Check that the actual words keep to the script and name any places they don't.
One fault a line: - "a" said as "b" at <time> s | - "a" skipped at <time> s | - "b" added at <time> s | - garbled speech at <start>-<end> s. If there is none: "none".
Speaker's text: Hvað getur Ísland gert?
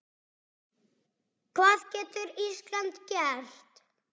none